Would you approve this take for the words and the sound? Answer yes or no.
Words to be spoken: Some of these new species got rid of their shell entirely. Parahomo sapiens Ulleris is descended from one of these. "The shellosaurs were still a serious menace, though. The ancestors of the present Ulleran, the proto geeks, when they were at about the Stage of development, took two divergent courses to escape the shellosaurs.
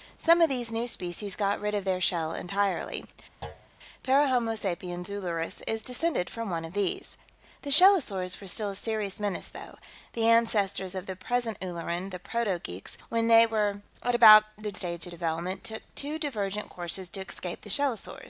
no